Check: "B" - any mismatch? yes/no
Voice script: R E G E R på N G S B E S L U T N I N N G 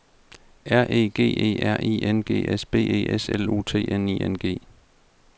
no